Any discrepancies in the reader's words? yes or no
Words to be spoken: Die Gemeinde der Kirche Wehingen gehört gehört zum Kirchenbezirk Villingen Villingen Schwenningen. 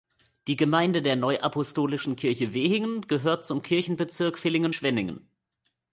yes